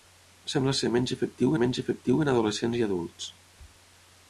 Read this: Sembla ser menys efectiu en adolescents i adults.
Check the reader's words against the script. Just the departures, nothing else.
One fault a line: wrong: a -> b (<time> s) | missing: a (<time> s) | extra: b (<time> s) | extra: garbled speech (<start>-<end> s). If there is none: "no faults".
extra: menys efectiu (1.6 s)